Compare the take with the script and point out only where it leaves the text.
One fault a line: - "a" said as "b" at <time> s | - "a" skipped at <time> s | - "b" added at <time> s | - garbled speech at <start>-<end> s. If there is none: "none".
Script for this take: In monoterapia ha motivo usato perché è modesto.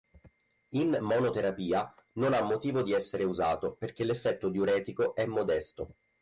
- "non" added at 2.1 s
- "di essere" added at 2.8 s
- "l'effetto diuretico" added at 4.0 s